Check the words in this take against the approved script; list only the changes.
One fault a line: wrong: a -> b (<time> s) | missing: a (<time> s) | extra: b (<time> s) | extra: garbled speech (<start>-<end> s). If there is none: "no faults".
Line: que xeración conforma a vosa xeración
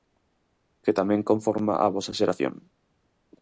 wrong: xeración -> tamén (1.0 s)